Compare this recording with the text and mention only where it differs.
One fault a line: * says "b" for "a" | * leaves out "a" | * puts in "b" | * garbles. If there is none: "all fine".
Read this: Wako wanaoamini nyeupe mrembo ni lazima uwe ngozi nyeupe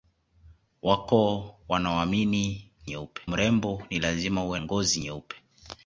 all fine